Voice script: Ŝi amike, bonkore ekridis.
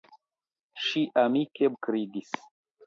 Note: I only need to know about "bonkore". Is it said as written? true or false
false